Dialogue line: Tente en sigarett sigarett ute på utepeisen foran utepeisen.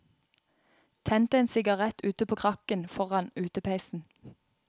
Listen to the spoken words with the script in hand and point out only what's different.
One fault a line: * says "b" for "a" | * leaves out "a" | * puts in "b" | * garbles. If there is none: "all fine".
* leaves out "sigarett"
* says "krakken" for "utepeisen"